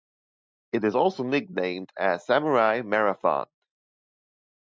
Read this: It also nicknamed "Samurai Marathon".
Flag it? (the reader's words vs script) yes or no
yes